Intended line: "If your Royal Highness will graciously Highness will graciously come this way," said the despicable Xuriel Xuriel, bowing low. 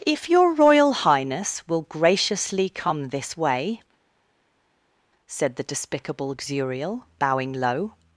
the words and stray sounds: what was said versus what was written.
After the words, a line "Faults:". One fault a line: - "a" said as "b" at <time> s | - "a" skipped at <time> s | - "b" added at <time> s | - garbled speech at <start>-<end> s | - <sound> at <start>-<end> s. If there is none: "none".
"If your Royal Highness will graciously come this way," said the despicable Xuriel, bowing low.
Faults:
- "Highness will graciously" skipped at 2.7 s
- "Xuriel" skipped at 7.1 s